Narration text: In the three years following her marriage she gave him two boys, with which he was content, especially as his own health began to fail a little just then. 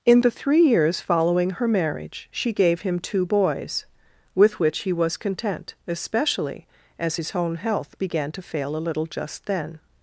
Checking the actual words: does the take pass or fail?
pass